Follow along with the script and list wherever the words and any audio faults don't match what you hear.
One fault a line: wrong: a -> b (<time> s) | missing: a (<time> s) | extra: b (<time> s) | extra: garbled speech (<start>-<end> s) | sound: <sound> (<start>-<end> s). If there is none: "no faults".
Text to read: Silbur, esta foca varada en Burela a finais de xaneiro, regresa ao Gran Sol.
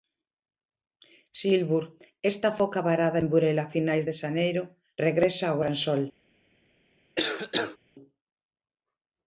sound: cough (7.2-7.8 s)